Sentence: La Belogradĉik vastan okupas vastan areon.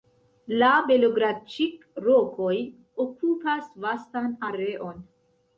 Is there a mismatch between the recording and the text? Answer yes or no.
yes